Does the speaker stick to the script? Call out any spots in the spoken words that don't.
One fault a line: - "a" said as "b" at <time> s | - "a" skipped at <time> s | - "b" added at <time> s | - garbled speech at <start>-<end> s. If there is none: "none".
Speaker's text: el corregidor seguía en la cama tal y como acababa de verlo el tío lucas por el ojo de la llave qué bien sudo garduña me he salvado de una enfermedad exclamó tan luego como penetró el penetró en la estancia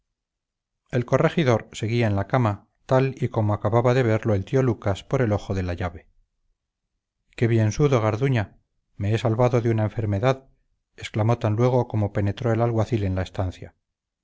- "penetró" said as "alguacil" at 12.6 s